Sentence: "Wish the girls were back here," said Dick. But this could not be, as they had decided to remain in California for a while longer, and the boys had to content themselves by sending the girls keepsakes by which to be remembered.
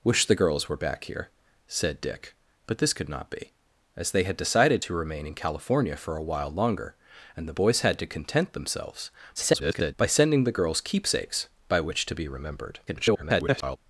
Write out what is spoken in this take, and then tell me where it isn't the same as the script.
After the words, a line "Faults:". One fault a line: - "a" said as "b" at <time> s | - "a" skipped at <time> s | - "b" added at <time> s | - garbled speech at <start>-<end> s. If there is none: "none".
"Wish the girls were back here," said Dick. But this could not be, as they had decided to remain in California for a while longer, and the boys had to content themselves [garbled] by sending the girls keepsakes by which to be remembered. [garbled]
Faults:
- garbled speech at 9.4-9.9 s
- garbled speech at 12.9-13.8 s